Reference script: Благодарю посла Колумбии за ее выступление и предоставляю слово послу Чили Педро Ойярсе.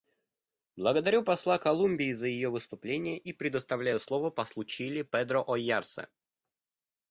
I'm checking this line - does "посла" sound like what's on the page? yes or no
yes